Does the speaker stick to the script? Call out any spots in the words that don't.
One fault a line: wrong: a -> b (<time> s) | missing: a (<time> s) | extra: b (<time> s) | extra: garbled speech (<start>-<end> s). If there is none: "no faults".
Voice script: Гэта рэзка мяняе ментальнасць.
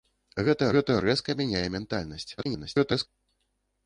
extra: гэта (0.7 s)
extra: garbled speech (2.4-3.1 s)